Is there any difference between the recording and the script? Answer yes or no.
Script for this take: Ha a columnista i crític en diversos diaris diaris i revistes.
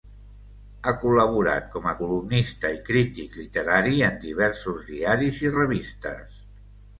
yes